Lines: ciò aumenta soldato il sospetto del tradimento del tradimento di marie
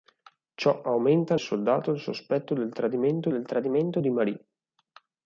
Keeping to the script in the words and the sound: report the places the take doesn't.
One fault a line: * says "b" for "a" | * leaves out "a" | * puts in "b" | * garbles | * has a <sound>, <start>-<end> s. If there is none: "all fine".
all fine